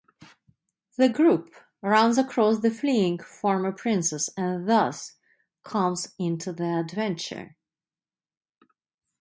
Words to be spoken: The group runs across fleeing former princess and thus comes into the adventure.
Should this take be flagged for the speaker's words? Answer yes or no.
yes